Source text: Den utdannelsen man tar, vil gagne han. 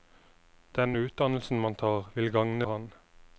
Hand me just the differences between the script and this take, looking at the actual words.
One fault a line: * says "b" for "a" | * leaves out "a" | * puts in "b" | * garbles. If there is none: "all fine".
all fine